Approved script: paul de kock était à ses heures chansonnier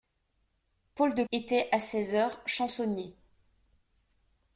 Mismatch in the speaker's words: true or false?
true